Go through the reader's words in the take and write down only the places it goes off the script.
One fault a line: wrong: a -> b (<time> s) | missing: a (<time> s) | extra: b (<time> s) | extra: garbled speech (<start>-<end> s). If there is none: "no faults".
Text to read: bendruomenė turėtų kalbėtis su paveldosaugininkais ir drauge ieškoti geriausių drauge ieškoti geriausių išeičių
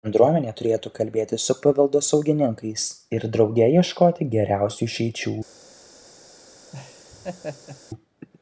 missing: drauge ieškoti geriausių (4.9 s)